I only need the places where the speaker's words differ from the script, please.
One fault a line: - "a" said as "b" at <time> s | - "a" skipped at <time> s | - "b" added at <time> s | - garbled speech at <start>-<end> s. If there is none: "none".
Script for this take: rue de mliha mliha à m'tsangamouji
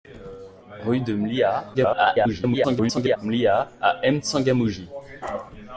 - garbled speech at 1.7-3.2 s